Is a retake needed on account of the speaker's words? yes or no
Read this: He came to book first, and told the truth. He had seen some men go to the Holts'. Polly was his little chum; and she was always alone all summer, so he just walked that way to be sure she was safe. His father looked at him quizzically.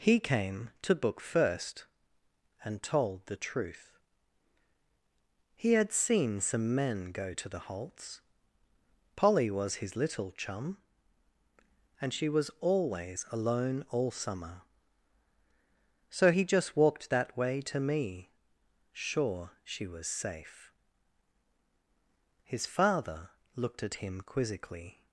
yes